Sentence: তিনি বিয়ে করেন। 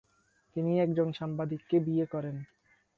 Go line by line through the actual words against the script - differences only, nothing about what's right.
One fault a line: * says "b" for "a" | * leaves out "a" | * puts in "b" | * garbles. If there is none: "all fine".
* puts in "একজন সাংবাদিককে"